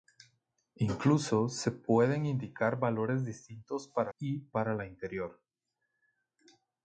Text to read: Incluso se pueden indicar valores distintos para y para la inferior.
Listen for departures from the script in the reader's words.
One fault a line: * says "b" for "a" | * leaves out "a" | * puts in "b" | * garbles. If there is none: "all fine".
all fine